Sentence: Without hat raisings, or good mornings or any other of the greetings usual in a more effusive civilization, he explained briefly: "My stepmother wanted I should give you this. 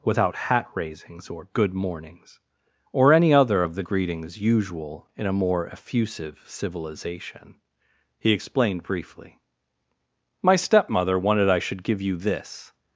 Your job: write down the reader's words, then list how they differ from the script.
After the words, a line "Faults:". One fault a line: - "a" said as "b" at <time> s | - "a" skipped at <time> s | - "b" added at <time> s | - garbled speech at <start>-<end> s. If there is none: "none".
Without hat raisings, or good mornings or any other of the greetings usual in a more effusive civilization, he explained briefly: "My stepmother wanted I should give you this.
Faults:
none